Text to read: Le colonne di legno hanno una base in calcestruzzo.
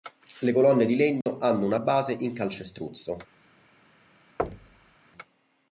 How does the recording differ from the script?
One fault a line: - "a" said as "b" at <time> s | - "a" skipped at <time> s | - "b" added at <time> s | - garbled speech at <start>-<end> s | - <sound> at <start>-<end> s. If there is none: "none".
- dropout at 1.2-1.3 s
- thud at 4.4-5.0 s